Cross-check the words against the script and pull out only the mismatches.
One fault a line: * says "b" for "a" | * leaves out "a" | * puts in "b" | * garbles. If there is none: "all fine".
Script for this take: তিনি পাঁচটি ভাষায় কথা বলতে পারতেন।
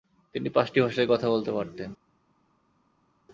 all fine